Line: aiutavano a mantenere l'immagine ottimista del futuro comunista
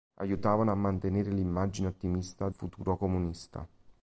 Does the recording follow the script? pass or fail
fail